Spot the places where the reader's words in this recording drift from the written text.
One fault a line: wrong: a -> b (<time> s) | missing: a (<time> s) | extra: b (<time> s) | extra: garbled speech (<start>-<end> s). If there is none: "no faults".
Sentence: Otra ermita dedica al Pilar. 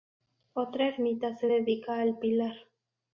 extra: se (1.4 s)